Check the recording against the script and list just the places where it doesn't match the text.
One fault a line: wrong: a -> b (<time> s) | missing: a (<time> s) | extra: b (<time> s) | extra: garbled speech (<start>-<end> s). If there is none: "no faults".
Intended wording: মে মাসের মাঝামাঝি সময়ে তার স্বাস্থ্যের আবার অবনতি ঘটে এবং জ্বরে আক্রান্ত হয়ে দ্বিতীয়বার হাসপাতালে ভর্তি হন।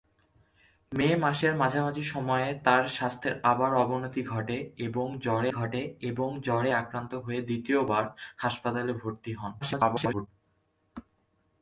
extra: ঘটে এবং জ্বরে (5.5 s)
extra: garbled speech (9.6-10.3 s)